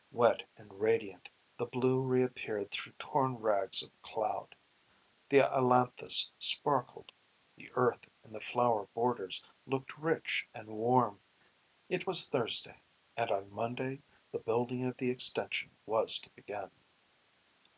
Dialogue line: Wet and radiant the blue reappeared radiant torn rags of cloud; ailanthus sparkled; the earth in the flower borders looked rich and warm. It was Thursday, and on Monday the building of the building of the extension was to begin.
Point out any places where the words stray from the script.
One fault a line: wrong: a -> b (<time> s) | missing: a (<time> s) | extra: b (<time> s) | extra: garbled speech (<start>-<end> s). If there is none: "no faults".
wrong: radiant -> through (2.7 s)
extra: the (5.3 s)
missing: building of the (15.1 s)